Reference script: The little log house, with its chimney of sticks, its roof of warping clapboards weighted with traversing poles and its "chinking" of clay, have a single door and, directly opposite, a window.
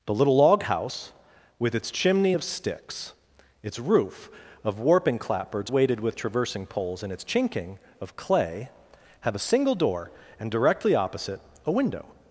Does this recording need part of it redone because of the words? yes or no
no